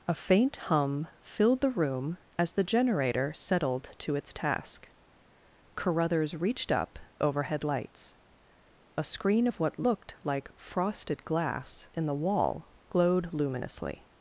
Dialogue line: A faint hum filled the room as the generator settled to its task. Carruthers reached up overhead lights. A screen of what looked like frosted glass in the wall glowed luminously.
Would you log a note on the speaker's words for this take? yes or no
no